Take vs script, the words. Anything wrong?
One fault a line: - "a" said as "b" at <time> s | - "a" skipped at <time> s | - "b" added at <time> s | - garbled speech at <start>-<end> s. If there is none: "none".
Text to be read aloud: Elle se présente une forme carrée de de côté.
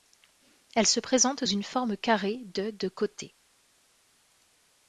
none